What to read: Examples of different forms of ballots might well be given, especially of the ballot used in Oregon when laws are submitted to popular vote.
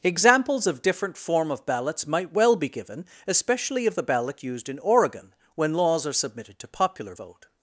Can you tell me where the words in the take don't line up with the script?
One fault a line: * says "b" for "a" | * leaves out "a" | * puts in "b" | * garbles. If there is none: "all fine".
* says "form" for "forms"